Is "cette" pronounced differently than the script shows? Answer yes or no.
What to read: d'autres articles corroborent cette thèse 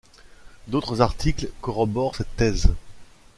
no